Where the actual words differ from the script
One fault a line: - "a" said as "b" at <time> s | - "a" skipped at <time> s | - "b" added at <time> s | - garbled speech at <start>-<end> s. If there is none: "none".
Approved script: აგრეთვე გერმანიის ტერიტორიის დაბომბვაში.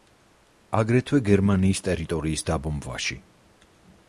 none